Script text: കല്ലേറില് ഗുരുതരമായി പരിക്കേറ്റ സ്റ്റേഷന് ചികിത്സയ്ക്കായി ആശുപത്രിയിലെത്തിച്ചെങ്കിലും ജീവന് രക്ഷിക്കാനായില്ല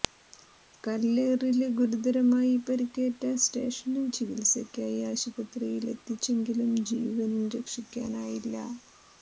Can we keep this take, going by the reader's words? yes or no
yes